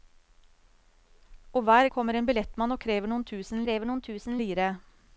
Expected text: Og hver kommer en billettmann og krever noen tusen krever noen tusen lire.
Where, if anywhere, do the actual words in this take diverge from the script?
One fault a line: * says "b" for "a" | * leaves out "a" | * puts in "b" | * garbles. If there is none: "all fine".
all fine